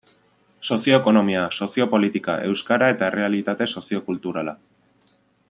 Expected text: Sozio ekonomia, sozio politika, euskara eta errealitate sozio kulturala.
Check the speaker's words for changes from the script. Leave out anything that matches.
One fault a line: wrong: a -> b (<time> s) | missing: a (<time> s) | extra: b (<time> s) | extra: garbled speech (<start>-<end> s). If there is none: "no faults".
no faults